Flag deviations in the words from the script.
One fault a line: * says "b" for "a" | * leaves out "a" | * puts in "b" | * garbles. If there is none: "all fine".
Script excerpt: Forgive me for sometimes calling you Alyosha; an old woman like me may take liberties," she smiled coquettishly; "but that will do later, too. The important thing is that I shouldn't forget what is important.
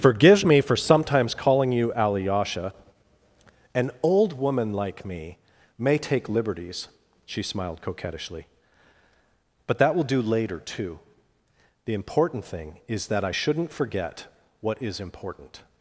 all fine